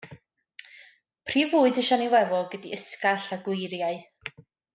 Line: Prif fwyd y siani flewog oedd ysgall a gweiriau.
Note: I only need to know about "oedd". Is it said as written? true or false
false